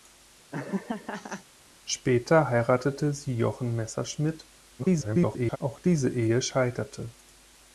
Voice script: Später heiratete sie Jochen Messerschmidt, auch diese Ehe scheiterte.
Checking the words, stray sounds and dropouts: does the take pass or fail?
fail